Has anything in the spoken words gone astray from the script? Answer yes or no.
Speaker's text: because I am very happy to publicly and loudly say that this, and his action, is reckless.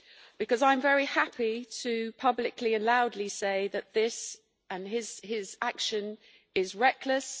no